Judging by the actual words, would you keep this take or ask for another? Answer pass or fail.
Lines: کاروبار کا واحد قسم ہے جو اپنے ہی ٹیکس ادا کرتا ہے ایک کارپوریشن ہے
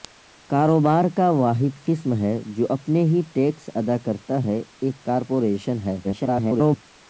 fail